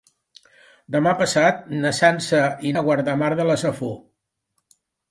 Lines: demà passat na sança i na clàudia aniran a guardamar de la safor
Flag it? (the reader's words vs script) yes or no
yes